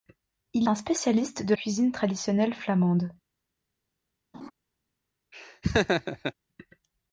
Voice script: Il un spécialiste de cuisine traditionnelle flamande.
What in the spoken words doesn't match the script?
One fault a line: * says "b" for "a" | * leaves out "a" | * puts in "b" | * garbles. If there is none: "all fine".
all fine